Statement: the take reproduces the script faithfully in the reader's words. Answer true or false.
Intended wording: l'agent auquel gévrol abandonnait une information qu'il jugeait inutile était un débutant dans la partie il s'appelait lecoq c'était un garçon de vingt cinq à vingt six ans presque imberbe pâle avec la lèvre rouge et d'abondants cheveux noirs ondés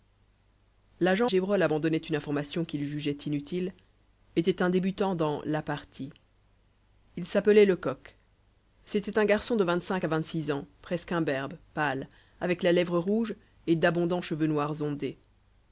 false